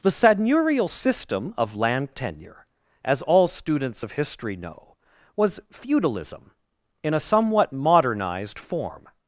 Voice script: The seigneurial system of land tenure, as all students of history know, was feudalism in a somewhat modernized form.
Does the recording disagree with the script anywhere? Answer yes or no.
no